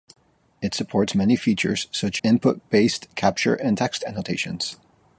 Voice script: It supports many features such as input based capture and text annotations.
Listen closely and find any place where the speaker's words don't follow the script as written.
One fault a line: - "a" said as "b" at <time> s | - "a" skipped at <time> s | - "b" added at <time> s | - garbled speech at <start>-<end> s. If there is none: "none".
- "as" skipped at 2.2 s